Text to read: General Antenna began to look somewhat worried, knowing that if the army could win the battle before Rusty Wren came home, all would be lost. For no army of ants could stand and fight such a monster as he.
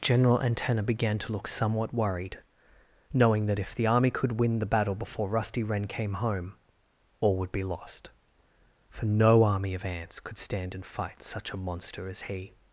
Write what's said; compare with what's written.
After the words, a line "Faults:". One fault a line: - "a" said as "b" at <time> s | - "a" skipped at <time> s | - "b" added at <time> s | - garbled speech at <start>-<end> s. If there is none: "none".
General Antenna began to look somewhat worried, knowing that if the army could win the battle before Rusty Wren came home, all would be lost. For no army of ants could stand and fight such a monster as he.
Faults:
none